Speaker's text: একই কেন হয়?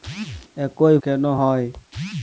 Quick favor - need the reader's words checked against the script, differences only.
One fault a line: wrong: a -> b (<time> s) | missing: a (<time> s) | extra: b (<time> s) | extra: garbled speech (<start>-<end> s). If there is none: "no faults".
no faults